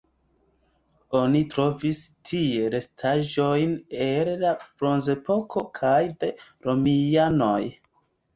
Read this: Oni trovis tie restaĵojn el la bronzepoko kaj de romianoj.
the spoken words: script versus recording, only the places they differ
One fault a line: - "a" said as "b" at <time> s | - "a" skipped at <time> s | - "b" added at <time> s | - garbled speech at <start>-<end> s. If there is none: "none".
none